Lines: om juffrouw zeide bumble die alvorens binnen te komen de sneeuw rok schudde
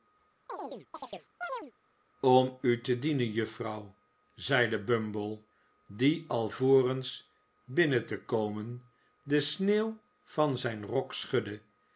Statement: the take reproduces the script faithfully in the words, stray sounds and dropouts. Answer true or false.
false